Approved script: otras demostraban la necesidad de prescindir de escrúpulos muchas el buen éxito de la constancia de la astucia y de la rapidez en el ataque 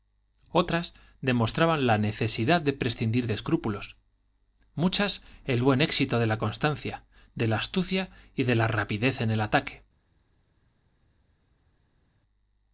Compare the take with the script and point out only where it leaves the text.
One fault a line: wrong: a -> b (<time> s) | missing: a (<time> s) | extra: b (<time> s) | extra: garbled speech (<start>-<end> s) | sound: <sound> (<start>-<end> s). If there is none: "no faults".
no faults